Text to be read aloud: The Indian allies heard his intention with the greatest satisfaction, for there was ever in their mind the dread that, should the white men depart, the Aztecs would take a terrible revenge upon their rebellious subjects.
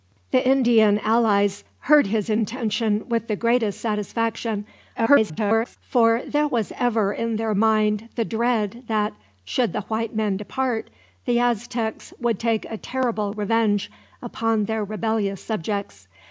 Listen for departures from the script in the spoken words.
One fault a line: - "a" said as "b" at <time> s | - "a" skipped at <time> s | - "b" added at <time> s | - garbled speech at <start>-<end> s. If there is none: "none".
- garbled speech at 4.9-5.8 s